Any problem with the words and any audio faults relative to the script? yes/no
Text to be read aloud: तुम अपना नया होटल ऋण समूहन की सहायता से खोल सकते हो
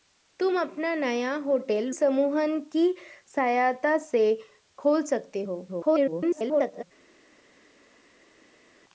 yes